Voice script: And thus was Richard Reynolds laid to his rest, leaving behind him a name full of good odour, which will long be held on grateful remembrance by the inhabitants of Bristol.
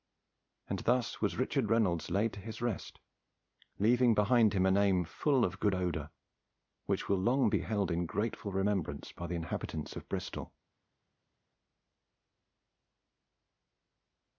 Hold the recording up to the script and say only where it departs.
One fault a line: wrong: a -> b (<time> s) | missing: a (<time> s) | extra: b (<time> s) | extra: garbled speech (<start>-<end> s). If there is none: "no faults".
wrong: on -> in (7.9 s)